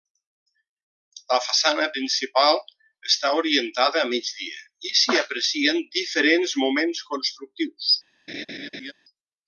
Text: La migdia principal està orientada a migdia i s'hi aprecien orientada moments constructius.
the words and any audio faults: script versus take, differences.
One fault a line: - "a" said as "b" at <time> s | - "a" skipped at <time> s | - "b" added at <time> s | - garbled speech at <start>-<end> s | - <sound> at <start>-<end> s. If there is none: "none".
- "migdia" said as "façana" at 1.5 s
- "orientada" said as "diferents" at 6.0 s
- laugh at 8.3-8.9 s